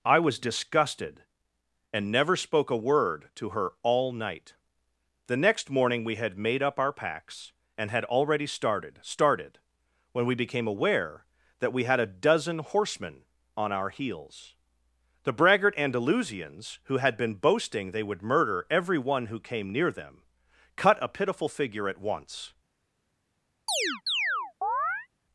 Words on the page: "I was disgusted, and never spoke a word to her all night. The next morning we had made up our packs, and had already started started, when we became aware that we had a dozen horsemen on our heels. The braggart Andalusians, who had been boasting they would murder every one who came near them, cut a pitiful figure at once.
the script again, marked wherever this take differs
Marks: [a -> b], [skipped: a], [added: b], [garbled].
"I was disgusted, and never spoke a word to her all night. The next morning we had made up our packs, and had already started started, when we became aware that we had a dozen horsemen on our heels. The braggart Andalusians, who had been boasting they would murder every one who came near them, cut a pitiful figure at once.